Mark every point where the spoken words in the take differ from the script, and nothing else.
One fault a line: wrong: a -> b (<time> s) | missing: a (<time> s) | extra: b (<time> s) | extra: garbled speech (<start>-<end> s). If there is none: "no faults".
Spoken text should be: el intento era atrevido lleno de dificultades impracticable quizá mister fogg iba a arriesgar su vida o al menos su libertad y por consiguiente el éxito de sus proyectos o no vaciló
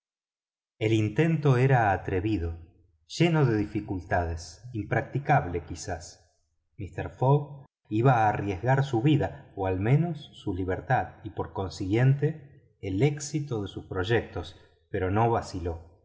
wrong: o -> pero (14.9 s)